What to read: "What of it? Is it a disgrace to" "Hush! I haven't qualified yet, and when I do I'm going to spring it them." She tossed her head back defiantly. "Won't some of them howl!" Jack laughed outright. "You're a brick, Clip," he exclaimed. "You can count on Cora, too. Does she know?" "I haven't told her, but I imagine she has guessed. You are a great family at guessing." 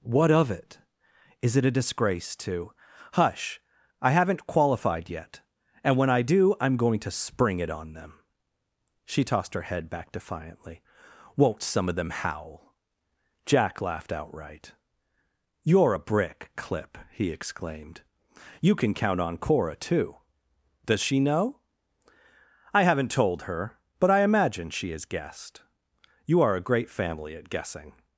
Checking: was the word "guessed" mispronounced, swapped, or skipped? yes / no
no